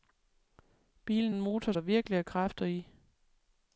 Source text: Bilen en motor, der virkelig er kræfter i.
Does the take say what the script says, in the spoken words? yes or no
yes